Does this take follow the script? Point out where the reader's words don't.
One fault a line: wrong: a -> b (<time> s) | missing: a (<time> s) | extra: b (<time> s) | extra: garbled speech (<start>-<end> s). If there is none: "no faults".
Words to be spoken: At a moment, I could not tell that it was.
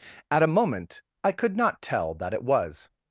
no faults